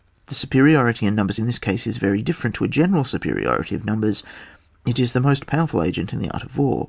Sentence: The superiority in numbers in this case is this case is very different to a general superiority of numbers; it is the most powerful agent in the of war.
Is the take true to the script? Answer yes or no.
no